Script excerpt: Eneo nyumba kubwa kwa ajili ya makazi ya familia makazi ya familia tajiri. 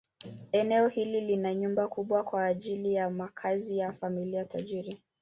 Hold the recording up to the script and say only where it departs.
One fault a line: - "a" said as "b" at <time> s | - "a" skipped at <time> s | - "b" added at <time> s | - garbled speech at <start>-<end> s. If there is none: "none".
- "hili lina" added at 0.9 s
- "makazi ya familia" skipped at 4.4 s